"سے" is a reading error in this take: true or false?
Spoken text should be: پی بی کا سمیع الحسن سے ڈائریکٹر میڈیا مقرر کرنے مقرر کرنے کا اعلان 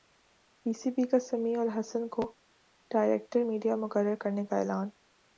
true